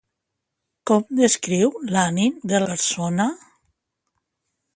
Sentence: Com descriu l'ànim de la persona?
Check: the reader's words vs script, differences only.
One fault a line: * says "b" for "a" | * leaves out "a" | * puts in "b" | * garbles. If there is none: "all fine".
* leaves out "la"